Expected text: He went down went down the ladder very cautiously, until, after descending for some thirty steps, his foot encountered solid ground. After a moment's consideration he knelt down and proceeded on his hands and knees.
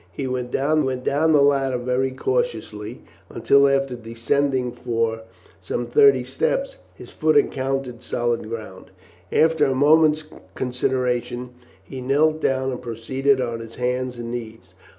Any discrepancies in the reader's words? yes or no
no